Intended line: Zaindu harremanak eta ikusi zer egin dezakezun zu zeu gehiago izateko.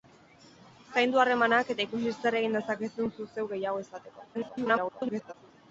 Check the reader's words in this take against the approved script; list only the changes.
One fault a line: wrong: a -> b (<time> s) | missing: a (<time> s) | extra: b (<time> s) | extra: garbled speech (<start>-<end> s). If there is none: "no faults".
extra: garbled speech (4.3-5.3 s)